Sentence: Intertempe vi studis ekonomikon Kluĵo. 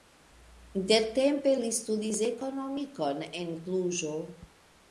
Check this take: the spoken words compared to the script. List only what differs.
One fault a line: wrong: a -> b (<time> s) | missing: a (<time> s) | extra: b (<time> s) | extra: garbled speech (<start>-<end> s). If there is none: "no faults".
wrong: vi -> li (1.6 s)
extra: en (3.4 s)